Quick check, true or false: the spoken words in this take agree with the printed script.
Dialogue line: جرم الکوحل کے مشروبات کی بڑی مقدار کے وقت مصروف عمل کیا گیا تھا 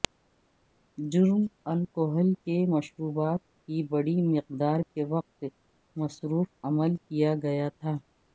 true